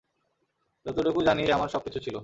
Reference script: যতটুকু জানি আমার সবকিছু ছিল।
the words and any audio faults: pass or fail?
pass